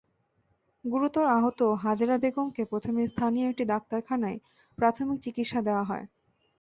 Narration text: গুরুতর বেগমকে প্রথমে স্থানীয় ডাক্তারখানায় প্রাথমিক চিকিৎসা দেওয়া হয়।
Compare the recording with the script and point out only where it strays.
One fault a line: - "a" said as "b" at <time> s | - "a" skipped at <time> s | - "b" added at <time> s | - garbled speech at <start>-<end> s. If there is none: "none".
- "আহত হাজেরা" added at 1.4 s
- "একটি" added at 3.5 s